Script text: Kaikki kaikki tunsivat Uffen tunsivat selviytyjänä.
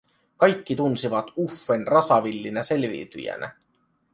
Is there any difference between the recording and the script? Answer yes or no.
yes